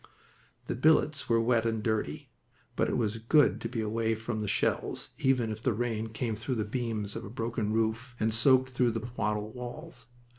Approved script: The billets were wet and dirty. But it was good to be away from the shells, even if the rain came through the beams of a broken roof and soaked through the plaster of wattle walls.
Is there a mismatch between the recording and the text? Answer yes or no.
yes